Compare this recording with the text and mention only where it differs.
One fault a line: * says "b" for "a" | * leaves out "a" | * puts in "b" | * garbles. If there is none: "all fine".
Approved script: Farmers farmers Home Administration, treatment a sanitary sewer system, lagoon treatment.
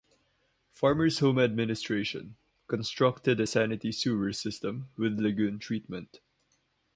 * leaves out "farmers"
* says "constructed" for "treatment"
* puts in "with"